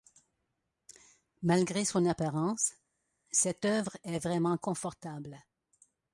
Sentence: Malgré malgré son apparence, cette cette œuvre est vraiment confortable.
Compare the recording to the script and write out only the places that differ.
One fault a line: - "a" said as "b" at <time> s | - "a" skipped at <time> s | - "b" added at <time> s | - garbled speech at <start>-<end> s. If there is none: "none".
- "malgré" skipped at 1.9 s
- "cette" skipped at 3.7 s